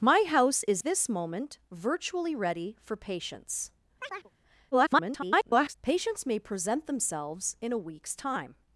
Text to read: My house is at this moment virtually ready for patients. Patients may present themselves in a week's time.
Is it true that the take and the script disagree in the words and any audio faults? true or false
true